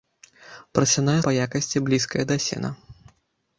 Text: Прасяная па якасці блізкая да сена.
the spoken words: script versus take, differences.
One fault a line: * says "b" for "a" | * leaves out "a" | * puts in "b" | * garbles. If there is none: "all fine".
all fine